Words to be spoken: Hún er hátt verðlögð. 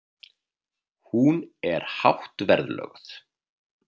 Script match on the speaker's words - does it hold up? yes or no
yes